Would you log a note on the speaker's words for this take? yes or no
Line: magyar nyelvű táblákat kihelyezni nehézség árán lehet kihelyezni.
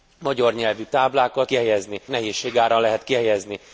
no